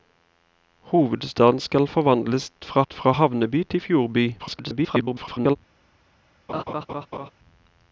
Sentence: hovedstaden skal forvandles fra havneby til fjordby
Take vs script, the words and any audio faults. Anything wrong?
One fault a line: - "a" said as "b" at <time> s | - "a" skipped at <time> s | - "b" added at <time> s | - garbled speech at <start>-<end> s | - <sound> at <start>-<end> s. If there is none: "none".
- "fra" added at 2.9 s
- garbled speech at 4.4-5.6 s
- laugh at 6.5-7.3 s